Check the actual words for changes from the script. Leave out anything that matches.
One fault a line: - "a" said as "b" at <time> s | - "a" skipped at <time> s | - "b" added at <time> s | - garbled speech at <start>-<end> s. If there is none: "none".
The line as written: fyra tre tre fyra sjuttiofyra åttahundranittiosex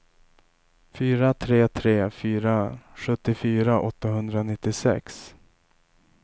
none